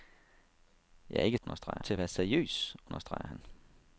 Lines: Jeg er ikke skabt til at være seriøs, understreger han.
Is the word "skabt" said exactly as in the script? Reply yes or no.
no